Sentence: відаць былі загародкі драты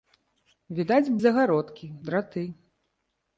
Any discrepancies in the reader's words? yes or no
yes